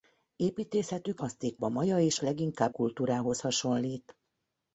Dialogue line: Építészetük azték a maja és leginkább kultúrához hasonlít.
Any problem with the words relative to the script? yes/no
no